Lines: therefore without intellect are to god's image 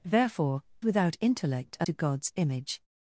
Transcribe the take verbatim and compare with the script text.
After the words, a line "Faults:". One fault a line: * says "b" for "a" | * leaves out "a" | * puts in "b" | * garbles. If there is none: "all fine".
therefore without intellect are to god's image
Faults:
all fine